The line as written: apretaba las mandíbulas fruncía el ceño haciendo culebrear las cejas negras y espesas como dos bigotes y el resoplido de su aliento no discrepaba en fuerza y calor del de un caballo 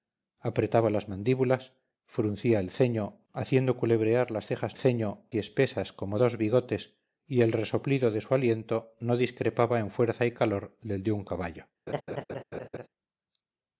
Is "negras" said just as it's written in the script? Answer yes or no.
no